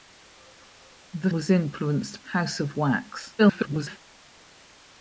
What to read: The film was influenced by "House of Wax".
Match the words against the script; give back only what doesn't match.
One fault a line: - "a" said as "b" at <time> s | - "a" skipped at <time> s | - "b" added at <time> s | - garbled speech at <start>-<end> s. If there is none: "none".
- "film" skipped at 1.3 s
- "by" skipped at 2.2 s
- garbled speech at 3.4-4.0 s